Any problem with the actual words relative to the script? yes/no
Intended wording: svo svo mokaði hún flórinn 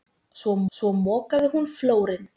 no